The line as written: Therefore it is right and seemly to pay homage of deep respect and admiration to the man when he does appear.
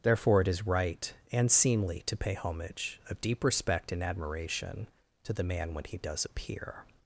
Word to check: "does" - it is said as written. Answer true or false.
true